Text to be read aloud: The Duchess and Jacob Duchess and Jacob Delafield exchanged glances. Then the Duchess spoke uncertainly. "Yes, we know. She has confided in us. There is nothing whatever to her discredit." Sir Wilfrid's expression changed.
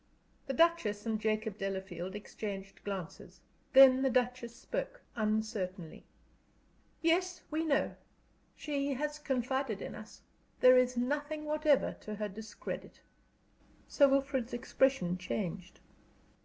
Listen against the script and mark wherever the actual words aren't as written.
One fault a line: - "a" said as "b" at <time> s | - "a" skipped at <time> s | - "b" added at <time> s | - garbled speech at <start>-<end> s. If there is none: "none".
- "Duchess and Jacob" skipped at 1.6 s